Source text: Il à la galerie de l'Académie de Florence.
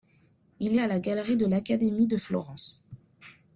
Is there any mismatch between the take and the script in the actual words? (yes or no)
no